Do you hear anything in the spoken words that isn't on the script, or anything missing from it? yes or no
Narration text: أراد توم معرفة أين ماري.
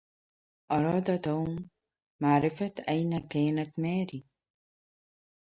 yes